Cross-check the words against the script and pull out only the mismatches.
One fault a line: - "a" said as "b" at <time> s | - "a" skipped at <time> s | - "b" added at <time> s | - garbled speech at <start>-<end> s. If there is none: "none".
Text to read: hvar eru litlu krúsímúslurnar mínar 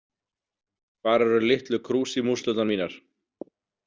none